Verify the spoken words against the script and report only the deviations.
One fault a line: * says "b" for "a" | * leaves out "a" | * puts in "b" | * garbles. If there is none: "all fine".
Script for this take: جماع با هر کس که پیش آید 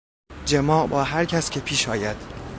all fine